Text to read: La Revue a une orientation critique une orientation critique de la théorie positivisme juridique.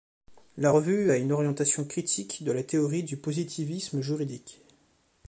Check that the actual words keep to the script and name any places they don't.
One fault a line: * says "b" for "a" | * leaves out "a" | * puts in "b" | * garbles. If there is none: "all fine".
* leaves out "une orientation critique"
* puts in "du"